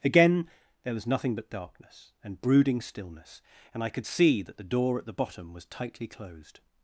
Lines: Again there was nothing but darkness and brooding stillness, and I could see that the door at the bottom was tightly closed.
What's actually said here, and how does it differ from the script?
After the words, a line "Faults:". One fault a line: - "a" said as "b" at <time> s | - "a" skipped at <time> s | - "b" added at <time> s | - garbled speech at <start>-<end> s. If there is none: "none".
Again there was nothing but darkness and brooding stillness, and I could see that the door at the bottom was tightly closed.
Faults:
none